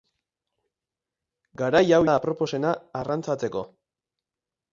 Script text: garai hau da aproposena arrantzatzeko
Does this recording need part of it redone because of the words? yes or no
no